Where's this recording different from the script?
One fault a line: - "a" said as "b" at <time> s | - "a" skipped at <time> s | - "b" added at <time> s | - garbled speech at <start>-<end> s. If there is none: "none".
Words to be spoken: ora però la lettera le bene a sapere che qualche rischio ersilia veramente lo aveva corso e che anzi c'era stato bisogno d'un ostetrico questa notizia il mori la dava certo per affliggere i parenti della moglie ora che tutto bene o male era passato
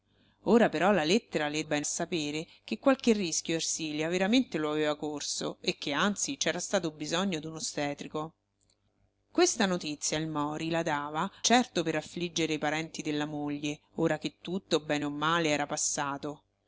none